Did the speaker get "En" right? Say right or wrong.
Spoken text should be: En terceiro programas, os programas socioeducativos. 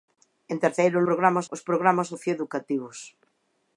right